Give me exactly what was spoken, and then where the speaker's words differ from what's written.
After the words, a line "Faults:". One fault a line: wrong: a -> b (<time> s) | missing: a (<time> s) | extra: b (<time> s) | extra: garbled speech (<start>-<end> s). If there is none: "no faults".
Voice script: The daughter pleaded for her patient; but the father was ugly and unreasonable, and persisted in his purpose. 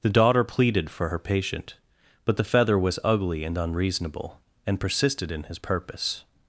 The daughter pleaded for her patient; but the feather was ugly and unreasonable, and persisted in his purpose.
Faults:
wrong: father -> feather (2.4 s)